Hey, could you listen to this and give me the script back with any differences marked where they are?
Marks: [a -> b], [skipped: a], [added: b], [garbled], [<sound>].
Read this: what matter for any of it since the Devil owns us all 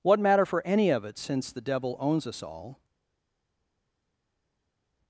what matter for any of it since the Devil owns us all